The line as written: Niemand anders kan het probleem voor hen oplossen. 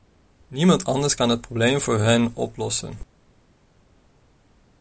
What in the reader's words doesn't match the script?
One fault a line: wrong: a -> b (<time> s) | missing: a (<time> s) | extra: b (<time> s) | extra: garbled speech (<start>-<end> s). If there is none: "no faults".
no faults